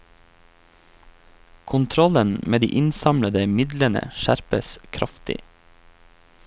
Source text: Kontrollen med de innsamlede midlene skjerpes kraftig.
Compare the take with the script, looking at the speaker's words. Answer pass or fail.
pass